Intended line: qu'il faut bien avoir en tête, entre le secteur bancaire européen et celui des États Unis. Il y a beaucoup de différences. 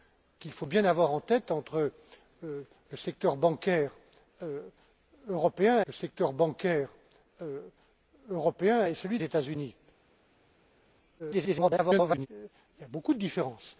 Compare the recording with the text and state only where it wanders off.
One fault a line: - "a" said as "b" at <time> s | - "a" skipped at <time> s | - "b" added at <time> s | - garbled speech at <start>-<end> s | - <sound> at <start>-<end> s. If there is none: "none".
- "secteur bancaire européen" added at 5.9 s
- "des" skipped at 9.2 s
- garbled speech at 11.2-12.3 s